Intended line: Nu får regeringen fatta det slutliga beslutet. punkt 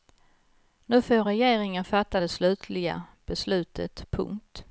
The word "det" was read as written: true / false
true